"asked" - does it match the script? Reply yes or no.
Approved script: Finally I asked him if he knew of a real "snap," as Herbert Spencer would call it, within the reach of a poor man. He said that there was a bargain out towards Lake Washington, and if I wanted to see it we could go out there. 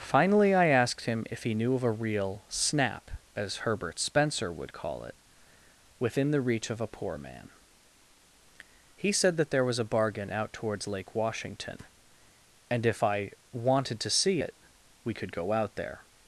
yes